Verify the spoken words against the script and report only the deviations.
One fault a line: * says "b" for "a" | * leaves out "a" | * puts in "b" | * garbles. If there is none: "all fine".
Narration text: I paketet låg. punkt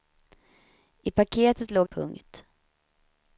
all fine